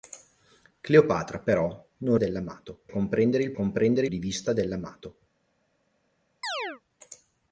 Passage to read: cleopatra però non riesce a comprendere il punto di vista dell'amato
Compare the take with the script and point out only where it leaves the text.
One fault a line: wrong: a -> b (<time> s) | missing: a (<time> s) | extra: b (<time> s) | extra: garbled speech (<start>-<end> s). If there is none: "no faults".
wrong: riesce -> dell'amato (2.1 s)
wrong: punto -> comprendere (3.5 s)